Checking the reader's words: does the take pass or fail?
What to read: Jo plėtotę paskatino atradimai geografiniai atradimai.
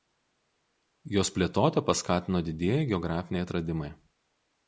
fail